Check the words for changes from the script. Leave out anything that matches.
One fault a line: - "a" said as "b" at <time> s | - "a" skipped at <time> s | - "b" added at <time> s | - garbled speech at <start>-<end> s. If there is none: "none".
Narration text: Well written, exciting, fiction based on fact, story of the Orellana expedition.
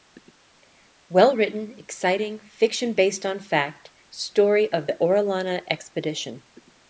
none